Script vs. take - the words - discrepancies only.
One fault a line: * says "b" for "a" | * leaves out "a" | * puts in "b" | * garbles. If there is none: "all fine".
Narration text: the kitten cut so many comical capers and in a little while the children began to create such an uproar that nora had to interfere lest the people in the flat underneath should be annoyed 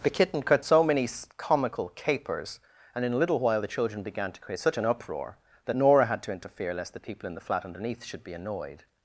all fine